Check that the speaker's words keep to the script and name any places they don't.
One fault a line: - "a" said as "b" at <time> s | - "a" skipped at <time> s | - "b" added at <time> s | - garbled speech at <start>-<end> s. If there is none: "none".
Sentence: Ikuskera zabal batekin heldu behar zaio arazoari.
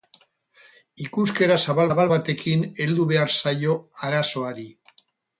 - "zabal" added at 1.9 s